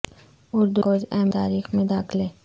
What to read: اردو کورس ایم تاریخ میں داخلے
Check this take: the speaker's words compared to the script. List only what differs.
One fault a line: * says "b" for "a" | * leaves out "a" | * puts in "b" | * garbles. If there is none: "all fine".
all fine